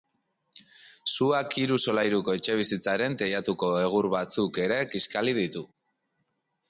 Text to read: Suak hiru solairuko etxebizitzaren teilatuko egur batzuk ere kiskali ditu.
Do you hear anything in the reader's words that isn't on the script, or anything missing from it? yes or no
no